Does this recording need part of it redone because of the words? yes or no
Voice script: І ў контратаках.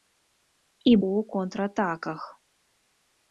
no